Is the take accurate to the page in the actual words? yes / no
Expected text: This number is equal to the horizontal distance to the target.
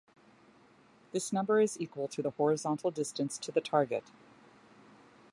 yes